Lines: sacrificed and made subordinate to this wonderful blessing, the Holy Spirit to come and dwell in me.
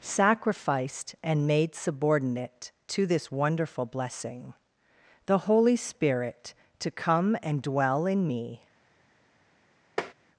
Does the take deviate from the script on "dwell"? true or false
false